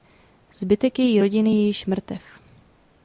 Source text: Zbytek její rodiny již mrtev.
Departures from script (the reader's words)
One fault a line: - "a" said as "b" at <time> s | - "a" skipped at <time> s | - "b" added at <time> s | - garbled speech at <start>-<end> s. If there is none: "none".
- "je" added at 1.5 s